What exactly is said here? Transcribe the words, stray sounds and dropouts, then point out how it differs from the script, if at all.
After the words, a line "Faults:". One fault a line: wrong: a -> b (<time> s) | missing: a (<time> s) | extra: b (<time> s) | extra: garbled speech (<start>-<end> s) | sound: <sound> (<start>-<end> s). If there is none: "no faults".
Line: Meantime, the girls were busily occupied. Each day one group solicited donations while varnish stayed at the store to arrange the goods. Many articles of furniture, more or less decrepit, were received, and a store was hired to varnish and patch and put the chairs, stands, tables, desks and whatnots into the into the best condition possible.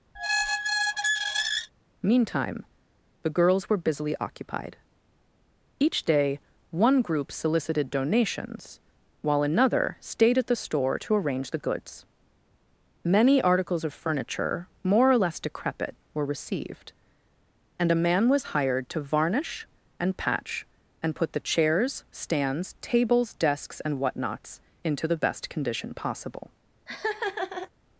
Meantime, the girls were busily occupied. Each day one group solicited donations while another stayed at the store to arrange the goods. Many articles of furniture, more or less decrepit, were received, and a man was hired to varnish and patch and put the chairs, stands, tables, desks and whatnots into the best condition possible.
Faults:
sound: squeak (0.1-1.7 s)
wrong: varnish -> another (9.4 s)
wrong: store -> man (18.0 s)
missing: into the (25.2 s)
sound: laugh (26.9-27.7 s)